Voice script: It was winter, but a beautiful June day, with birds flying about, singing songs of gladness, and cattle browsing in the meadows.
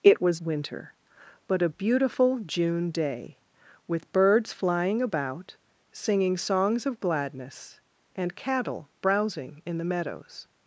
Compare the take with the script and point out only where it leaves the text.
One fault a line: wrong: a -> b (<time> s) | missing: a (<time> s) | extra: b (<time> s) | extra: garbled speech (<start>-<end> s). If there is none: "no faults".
no faults